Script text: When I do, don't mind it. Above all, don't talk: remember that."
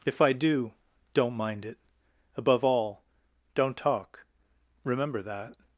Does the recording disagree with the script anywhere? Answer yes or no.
yes